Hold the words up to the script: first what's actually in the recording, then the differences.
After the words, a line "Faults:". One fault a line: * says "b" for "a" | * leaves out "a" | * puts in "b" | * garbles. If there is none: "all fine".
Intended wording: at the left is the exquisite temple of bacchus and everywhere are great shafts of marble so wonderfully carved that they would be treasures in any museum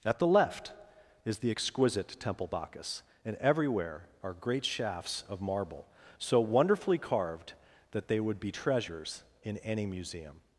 at the left is the exquisite temple bacchus and everywhere are great shafts of marble so wonderfully carved that they would be treasures in any museum
Faults:
* leaves out "of"